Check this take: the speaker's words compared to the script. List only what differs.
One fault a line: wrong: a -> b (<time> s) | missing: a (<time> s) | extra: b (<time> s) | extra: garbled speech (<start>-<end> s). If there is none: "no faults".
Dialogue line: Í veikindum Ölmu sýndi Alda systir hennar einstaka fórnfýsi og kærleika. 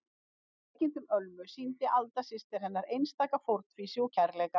no faults